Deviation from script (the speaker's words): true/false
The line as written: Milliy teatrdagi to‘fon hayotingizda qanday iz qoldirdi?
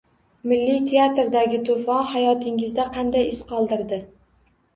false